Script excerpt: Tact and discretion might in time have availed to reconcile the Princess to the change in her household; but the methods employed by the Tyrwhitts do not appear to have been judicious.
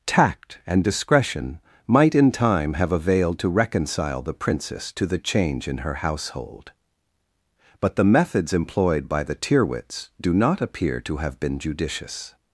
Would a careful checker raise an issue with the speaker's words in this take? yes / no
no